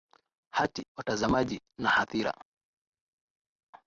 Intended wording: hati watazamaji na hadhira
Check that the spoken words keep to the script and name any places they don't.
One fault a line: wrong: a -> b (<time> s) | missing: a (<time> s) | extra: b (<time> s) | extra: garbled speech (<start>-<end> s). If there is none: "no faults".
no faults